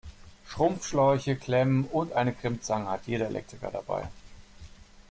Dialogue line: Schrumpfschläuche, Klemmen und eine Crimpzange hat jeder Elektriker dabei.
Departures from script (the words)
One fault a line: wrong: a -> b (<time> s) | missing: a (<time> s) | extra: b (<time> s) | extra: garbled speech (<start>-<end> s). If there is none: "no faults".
no faults